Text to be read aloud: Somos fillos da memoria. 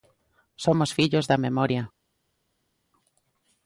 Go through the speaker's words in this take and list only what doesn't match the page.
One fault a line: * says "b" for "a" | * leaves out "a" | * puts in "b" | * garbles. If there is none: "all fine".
all fine